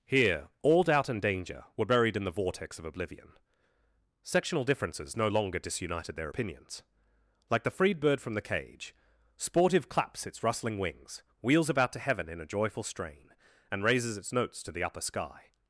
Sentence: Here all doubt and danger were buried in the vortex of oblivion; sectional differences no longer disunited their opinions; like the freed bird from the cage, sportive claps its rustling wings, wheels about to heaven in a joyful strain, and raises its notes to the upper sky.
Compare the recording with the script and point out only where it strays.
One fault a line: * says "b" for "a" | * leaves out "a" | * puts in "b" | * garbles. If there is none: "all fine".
all fine